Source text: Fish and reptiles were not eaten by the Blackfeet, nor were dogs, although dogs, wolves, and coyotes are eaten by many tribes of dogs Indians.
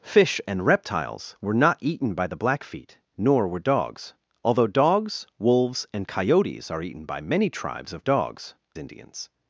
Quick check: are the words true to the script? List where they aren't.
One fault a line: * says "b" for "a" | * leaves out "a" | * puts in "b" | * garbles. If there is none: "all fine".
all fine